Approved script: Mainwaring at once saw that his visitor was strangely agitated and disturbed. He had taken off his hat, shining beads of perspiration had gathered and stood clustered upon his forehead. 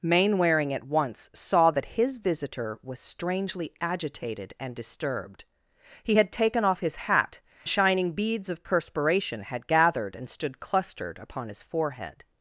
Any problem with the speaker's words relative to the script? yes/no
no